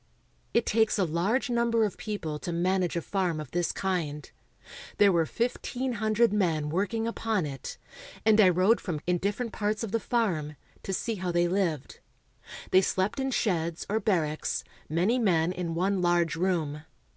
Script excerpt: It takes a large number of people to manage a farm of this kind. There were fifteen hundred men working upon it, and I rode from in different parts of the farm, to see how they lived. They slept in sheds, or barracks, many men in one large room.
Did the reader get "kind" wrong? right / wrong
right